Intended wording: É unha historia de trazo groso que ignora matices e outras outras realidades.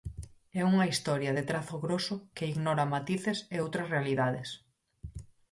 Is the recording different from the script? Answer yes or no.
yes